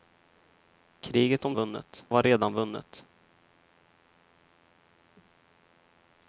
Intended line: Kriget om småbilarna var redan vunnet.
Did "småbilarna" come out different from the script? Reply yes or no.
yes